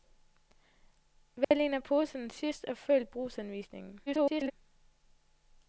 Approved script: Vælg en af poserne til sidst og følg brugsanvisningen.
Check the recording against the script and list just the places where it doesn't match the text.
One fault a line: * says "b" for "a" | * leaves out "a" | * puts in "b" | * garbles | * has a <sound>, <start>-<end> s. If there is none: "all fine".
* has a dropout, 1.4-1.5 s
* leaves out "til"
* garbles